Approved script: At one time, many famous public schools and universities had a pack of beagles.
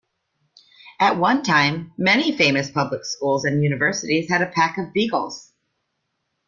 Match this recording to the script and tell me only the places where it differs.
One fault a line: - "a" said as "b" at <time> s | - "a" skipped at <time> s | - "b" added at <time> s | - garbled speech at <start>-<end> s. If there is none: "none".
none